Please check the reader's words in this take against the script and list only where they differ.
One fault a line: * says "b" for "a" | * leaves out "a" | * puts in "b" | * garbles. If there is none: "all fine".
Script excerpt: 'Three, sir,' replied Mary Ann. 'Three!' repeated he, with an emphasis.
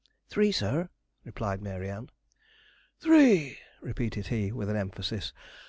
all fine